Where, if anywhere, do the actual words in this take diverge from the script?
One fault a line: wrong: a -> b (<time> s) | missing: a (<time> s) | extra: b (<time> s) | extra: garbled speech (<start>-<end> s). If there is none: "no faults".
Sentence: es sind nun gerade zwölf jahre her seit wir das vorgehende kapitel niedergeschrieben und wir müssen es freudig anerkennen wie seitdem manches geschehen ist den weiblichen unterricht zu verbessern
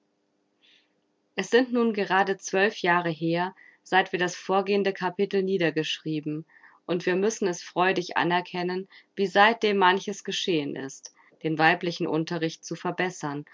no faults